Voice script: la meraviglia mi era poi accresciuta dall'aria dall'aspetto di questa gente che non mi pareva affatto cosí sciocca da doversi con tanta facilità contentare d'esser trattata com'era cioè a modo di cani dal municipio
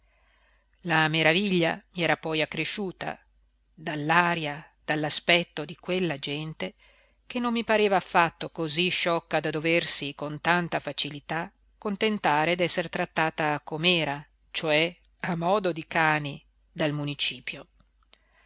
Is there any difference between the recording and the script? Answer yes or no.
yes